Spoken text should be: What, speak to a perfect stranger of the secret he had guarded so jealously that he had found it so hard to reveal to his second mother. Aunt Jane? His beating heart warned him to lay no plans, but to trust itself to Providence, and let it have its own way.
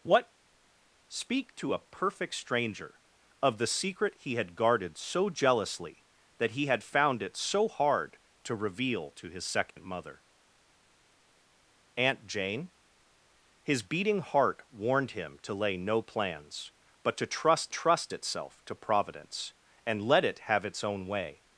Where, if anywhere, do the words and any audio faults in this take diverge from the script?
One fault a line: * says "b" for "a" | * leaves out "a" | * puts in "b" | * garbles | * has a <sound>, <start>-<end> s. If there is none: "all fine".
* has a dropout, 9.7-9.8 s
* puts in "trust"